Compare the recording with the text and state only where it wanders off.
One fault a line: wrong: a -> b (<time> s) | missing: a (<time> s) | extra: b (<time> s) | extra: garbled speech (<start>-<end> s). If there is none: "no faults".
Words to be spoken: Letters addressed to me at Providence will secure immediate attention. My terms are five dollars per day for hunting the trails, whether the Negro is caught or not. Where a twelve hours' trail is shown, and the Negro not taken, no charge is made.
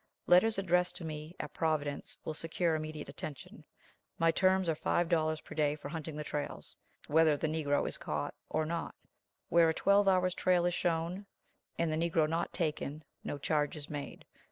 no faults